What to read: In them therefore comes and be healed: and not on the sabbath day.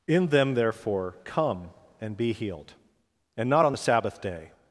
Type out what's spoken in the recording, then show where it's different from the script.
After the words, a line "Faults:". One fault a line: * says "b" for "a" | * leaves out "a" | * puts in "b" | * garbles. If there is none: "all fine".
In them therefore come and be healed: and not on the sabbath day.
Faults:
* says "come" for "comes"